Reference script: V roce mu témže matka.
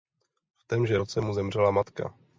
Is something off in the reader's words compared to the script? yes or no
yes